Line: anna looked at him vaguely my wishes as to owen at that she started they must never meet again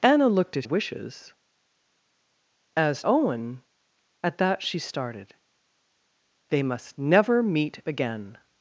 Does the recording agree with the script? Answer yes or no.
no